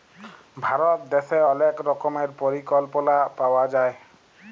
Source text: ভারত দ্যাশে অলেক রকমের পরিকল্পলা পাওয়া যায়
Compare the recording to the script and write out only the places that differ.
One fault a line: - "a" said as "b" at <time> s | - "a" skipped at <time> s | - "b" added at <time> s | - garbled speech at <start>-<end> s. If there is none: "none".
none